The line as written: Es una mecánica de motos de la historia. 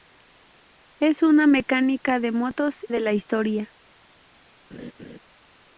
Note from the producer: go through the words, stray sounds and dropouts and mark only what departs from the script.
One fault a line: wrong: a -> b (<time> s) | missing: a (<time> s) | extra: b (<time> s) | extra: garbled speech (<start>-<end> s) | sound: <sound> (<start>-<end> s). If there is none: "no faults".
sound: laugh (4.7-5.2 s)